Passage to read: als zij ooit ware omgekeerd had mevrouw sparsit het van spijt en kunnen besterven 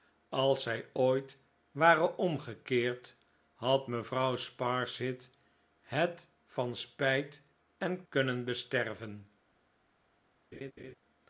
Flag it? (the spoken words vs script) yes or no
no